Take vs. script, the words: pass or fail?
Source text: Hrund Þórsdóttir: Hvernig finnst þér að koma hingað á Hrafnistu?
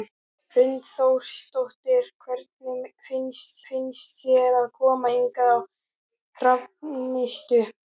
fail